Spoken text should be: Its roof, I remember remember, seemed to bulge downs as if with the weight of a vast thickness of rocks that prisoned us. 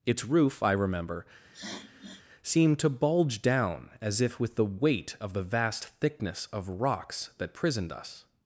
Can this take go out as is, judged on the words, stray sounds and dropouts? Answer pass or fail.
fail